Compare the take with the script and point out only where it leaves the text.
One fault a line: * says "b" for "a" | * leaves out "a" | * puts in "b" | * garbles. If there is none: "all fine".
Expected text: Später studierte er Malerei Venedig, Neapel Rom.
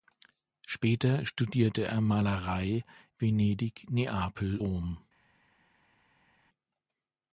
all fine